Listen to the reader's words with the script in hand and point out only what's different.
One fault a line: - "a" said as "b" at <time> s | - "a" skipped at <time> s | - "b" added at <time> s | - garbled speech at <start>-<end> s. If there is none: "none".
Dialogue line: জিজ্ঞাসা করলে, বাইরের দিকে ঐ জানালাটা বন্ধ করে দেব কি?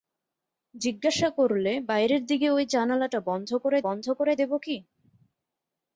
- "বন্ধ করে" added at 3.9 s